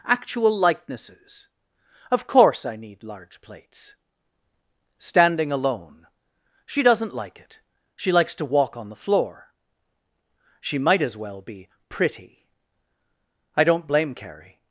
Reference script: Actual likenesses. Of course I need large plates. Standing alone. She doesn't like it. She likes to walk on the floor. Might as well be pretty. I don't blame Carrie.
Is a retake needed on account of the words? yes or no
yes